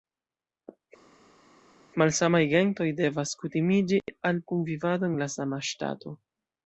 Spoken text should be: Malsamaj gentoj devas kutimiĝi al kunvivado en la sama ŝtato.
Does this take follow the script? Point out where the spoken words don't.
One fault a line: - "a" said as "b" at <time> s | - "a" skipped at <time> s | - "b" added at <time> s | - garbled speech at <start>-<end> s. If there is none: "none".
none